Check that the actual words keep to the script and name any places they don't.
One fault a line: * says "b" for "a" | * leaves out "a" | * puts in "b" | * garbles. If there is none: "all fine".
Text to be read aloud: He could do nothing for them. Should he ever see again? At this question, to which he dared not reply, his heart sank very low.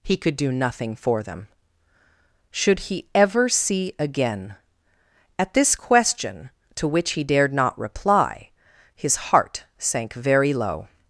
all fine